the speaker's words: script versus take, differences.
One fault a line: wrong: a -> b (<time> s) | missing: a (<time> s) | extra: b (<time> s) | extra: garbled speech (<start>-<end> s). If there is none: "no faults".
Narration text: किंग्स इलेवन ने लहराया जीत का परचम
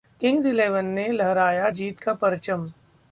no faults